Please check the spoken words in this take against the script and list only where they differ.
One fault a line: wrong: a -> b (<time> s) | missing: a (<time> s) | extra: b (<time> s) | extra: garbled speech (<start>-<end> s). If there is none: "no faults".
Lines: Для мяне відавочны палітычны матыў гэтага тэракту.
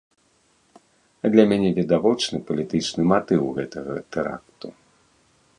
no faults